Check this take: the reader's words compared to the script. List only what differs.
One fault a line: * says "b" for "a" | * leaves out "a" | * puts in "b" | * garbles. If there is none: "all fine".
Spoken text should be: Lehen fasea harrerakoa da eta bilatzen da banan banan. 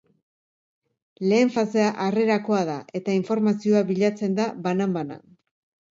* puts in "informazioa"